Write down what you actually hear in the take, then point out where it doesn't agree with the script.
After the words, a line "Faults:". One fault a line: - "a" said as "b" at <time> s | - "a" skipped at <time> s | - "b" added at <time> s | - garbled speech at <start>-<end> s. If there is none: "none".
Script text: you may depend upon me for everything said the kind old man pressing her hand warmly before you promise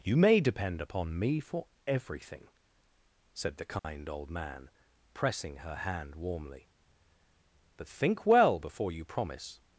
you may depend upon me for everything said the kind old man pressing her hand warmly but think well before you promise
Faults:
- "but think well" added at 7.8 s